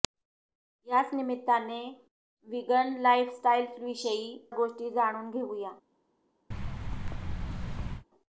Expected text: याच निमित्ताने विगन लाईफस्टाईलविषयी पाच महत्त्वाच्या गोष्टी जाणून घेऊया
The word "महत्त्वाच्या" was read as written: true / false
false